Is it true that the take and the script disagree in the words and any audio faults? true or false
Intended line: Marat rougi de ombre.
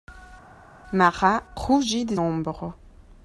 false